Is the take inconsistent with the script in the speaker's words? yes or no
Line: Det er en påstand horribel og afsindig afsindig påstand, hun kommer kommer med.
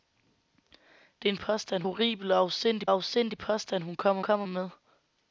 no